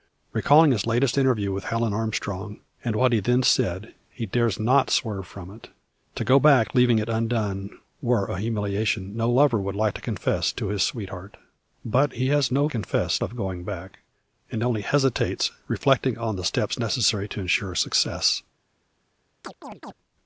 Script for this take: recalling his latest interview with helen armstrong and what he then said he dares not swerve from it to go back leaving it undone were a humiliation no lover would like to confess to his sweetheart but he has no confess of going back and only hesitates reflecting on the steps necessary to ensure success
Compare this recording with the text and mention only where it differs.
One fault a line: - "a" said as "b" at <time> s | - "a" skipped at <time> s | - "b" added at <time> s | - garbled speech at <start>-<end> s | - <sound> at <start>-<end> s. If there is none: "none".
- chirp at 19.4-19.9 s